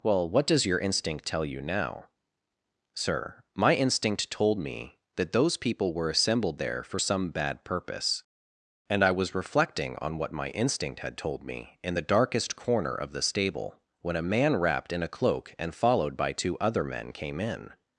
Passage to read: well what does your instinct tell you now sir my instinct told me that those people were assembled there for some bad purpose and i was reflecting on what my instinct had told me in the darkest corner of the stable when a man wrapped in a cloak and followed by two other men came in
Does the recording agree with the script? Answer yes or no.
yes